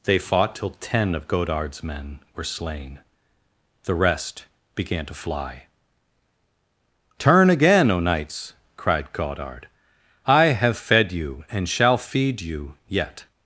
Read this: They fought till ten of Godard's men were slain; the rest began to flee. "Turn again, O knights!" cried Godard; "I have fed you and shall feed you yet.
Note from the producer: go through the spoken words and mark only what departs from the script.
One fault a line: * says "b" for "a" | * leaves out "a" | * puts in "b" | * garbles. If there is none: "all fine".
* says "fly" for "flee"